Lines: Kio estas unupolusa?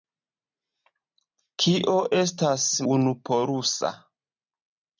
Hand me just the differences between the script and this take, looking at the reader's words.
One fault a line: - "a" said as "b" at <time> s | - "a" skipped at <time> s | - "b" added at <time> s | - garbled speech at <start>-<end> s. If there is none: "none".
none